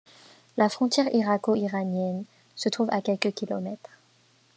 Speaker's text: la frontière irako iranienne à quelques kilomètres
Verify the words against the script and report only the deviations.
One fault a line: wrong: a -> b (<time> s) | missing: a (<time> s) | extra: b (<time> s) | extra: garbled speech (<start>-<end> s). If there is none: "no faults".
extra: se trouve (2.6 s)